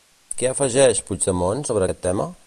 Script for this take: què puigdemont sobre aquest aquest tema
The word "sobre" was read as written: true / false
true